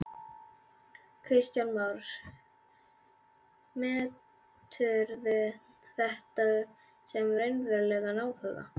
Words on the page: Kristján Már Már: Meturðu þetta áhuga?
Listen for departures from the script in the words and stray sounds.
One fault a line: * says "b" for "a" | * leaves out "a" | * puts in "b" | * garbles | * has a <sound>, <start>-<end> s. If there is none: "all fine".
* leaves out "Már"
* puts in "sem raunverulegan"